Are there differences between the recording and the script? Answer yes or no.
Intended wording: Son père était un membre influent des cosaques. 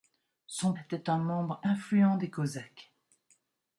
yes